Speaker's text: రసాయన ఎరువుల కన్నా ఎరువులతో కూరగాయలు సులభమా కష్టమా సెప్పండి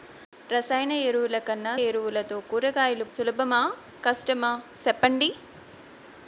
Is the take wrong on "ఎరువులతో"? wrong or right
right